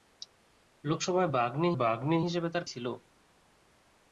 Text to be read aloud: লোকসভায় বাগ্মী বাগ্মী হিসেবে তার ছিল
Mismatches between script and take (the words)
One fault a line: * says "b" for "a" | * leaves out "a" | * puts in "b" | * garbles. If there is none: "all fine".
all fine